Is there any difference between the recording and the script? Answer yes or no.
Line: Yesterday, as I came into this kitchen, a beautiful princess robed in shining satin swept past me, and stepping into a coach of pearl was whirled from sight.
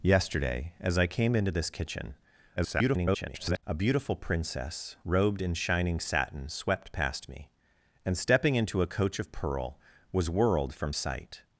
yes